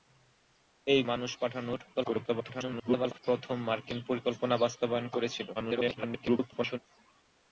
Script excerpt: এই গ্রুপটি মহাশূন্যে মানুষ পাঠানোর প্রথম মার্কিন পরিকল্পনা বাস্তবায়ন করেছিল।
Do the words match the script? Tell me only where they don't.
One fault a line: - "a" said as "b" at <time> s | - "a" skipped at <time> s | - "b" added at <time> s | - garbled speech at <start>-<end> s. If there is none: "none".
- "গ্রুপটি মহাশূন্যে" skipped at 1.0 s
- garbled speech at 1.9-3.2 s
- garbled speech at 5.6-6.8 s